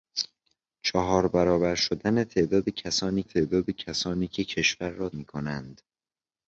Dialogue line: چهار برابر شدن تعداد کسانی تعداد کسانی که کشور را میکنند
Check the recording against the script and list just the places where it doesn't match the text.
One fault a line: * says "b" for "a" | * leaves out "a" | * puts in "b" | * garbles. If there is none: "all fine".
all fine